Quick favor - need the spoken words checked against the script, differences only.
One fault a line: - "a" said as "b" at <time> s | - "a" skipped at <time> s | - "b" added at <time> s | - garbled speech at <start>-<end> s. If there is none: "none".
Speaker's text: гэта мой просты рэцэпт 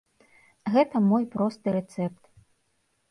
none